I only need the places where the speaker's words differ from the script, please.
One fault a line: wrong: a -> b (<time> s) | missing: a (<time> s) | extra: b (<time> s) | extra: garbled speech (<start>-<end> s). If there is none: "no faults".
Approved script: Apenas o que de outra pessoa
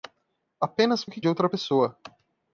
no faults